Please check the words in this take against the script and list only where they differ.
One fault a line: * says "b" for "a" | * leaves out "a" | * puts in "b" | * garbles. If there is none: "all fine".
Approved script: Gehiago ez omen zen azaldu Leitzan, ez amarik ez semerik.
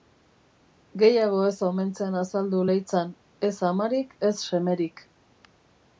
all fine